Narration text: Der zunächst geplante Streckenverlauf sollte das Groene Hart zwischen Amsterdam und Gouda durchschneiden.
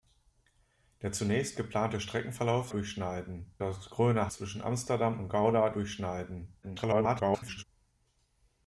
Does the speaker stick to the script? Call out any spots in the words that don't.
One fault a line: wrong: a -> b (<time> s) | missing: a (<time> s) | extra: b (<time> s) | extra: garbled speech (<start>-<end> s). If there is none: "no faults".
wrong: sollte -> durchschneiden (2.7 s)
missing: Hart (4.3 s)
extra: garbled speech (6.6-7.6 s)